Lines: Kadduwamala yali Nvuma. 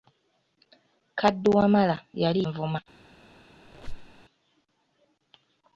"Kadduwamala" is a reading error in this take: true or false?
false